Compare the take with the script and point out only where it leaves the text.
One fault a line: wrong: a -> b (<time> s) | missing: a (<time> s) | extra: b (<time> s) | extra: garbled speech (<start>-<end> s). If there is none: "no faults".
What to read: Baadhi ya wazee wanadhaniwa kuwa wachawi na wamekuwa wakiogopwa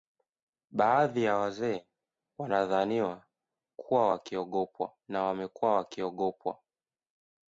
wrong: wachawi -> wakiogopwa (4.1 s)